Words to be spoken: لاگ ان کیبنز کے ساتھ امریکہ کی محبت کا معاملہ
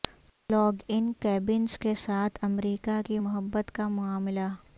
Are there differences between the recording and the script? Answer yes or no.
no